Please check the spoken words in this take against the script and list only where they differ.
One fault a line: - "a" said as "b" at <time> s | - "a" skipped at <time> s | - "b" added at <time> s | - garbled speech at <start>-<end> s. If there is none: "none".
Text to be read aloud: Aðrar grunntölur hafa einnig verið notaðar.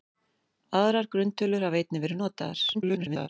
- garbled speech at 2.7-3.3 s